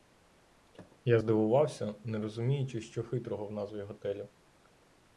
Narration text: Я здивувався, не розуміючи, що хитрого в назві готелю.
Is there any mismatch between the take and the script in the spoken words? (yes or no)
no